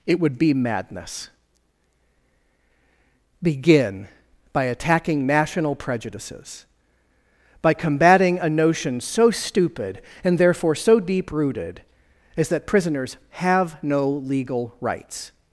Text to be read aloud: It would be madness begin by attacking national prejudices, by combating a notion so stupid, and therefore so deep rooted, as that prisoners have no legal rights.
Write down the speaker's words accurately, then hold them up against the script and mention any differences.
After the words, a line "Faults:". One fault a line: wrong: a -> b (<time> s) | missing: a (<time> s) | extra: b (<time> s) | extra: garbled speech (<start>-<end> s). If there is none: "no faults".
It would be madness begin by attacking national prejudices, by combating a notion so stupid, and therefore so deep rooted, as that prisoners have no legal rights.
Faults:
no faults